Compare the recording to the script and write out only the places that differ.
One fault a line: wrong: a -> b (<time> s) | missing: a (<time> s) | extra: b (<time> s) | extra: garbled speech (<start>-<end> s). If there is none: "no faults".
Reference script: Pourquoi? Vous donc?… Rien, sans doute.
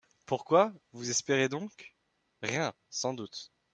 extra: espérez (1.1 s)